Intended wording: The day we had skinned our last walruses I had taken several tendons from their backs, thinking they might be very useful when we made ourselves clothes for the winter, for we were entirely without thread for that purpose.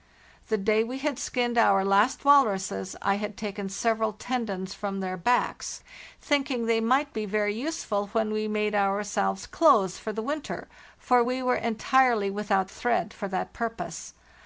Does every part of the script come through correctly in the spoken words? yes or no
yes